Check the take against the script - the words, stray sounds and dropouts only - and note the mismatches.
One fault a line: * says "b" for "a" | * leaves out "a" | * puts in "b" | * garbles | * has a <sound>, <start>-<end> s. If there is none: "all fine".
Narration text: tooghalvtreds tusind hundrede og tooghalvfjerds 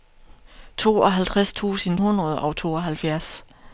all fine